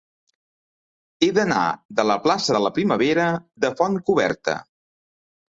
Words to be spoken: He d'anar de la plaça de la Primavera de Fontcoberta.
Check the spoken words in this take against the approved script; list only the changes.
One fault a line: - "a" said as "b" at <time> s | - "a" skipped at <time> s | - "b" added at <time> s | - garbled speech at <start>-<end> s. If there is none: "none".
none